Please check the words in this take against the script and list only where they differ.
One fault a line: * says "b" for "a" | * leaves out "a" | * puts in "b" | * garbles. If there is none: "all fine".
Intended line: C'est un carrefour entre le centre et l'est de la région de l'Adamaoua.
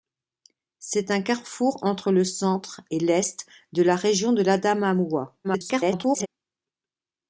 * garbles